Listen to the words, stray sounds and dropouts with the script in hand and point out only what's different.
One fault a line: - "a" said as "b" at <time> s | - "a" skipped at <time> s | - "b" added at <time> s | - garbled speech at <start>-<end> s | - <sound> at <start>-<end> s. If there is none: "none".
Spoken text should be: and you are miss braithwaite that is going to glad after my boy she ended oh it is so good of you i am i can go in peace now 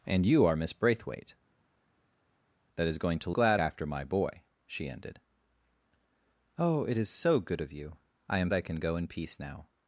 none